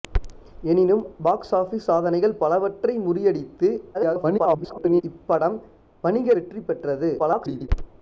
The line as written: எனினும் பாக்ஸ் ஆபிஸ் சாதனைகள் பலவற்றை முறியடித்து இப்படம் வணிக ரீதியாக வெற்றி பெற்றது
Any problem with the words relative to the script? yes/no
yes